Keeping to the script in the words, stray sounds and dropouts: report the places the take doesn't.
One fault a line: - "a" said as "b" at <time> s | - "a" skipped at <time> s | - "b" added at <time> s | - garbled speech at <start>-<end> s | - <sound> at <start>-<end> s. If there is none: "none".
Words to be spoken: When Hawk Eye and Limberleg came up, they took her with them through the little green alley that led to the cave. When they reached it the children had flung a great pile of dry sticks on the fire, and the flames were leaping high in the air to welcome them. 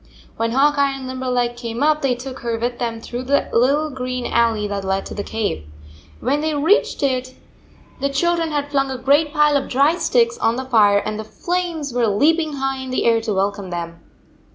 none